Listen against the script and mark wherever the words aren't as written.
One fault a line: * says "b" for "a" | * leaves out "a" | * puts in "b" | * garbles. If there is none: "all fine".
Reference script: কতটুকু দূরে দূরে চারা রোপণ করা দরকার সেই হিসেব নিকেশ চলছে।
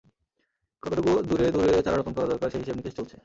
all fine